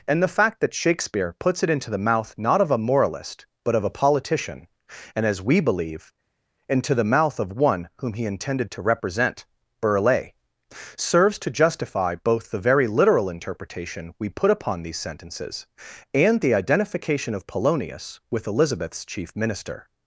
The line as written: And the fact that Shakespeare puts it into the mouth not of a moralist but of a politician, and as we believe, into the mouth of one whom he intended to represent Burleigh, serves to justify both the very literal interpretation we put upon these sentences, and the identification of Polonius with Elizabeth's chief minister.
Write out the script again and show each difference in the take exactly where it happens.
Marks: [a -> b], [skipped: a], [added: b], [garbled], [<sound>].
And the fact that Shakespeare puts it into the mouth not of a moralist but of a politician, and as we believe, into the mouth of one whom he intended to represent Burleigh, serves to justify both the very literal interpretation we put upon these sentences, and the identification of Polonius with Elizabeth's chief minister.